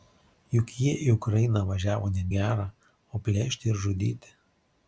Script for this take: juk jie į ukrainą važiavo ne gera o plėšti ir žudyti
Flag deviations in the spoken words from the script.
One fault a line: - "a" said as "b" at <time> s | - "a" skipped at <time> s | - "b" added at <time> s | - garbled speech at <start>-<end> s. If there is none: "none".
none